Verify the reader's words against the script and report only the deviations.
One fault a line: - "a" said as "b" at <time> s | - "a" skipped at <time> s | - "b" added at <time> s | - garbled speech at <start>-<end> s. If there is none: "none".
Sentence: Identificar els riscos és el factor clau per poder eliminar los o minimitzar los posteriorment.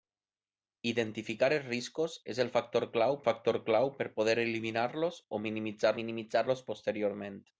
- "factor clau" added at 3.3 s
- "minimitzar" added at 6.0 s